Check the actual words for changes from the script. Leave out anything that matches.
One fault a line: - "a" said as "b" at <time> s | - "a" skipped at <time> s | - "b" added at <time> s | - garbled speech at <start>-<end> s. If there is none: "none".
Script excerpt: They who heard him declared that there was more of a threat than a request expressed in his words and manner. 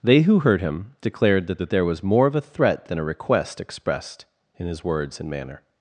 - "that" added at 1.6 s